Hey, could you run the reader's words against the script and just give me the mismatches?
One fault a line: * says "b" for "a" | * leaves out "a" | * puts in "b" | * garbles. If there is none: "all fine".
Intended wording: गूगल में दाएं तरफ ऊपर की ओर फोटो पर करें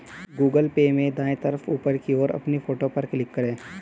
* puts in "पे"
* puts in "अपनी"
* puts in "क्लिक"